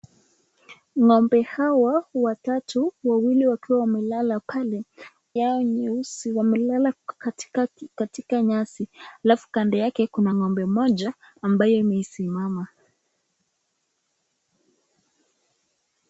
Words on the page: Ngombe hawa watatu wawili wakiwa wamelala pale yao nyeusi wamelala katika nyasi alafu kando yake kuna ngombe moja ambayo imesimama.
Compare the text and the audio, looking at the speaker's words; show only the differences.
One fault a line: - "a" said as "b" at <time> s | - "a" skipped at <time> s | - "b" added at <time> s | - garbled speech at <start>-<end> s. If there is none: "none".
none